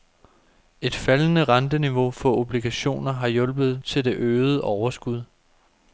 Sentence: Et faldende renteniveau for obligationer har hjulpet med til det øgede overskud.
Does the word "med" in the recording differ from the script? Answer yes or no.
yes